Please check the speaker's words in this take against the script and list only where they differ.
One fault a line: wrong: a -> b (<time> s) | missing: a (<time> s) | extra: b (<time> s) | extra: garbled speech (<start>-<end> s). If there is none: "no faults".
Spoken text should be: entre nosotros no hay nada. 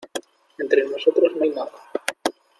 no faults